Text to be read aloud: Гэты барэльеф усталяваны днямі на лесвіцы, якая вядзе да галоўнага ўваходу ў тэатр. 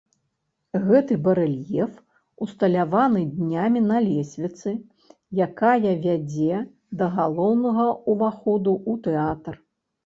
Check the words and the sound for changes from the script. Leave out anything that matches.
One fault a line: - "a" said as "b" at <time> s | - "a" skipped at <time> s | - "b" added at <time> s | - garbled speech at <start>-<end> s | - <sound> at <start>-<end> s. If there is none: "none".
none